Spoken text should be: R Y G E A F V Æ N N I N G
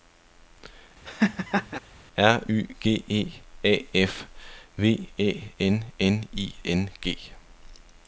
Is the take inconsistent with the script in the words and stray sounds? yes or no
yes